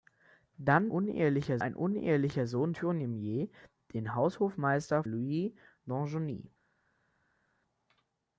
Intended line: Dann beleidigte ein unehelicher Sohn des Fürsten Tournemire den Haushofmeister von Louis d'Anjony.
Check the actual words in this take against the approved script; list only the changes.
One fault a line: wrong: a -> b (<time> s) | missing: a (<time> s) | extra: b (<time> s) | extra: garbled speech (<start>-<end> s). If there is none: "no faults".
wrong: beleidigte -> unehelicher (0.9 s)
missing: des Fürsten (2.7 s)
missing: von (5.0 s)